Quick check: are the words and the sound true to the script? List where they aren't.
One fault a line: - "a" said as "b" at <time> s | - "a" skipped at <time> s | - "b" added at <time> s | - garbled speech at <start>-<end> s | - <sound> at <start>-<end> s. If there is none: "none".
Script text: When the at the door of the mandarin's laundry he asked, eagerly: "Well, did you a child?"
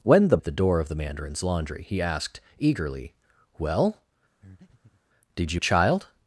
- breath at 4.4-5.0 s